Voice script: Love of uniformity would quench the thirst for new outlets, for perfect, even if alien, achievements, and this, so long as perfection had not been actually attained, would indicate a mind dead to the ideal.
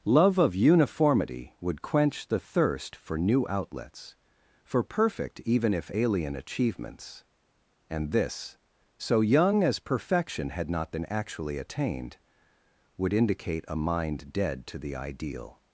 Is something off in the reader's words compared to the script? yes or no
yes